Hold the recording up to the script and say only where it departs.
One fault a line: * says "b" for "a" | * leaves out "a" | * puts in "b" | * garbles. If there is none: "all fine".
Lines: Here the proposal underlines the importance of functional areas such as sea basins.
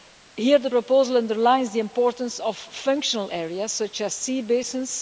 all fine